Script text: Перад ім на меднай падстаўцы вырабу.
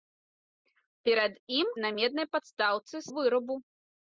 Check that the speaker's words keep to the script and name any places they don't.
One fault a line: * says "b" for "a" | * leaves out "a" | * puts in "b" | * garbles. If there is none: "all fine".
all fine